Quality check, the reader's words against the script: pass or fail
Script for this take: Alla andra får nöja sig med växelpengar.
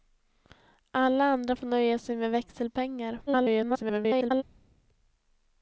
fail